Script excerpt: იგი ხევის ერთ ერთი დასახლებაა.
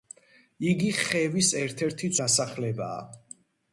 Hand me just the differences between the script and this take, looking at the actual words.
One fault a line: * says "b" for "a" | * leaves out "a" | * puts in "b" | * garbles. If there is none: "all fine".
all fine